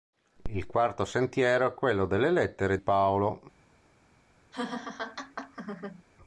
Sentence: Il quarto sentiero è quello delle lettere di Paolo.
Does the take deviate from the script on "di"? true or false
true